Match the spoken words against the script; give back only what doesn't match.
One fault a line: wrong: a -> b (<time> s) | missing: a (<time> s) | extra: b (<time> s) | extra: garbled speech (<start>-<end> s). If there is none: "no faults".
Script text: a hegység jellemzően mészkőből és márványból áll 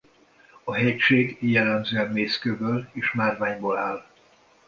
no faults